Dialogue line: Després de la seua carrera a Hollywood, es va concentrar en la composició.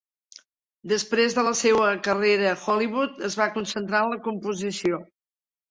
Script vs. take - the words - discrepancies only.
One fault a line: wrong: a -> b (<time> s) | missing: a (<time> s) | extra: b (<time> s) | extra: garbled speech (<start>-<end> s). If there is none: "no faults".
no faults